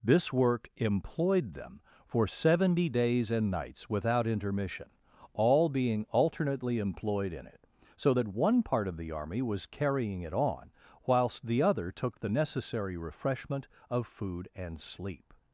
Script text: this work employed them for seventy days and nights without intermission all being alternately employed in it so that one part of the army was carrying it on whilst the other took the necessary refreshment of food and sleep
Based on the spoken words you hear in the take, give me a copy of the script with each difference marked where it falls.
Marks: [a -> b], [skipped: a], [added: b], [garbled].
this work employed them for seventy days and nights without intermission all being alternately employed in it so that one part of the army was carrying it on whilst the other took the necessary refreshment of food and sleep